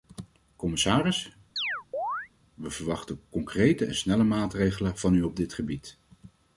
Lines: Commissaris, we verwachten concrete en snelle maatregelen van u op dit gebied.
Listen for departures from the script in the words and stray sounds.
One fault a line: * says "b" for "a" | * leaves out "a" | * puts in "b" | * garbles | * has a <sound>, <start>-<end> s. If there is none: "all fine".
* has a chirp, 1.6-2.3 s